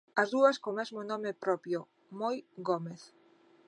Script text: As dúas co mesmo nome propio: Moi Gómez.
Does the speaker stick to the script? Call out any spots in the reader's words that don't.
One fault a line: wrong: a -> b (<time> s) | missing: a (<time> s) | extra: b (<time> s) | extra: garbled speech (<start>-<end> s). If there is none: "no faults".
no faults